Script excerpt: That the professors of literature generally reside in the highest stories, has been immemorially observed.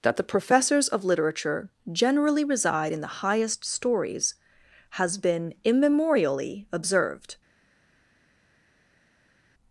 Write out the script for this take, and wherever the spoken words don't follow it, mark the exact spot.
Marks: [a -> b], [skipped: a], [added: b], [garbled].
That the professors of literature generally reside in the highest stories, has been immemorially observed.